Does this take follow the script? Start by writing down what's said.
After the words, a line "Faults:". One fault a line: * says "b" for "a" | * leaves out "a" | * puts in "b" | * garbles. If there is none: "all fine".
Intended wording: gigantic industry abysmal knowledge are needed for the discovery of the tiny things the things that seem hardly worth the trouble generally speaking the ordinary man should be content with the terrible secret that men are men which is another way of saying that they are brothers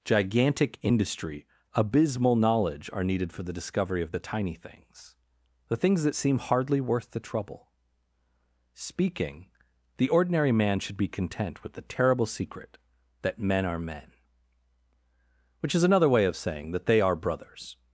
gigantic industry abysmal knowledge are needed for the discovery of the tiny things the things that seem hardly worth the trouble speaking the ordinary man should be content with the terrible secret that men are men which is another way of saying that they are brothers
Faults:
* leaves out "generally"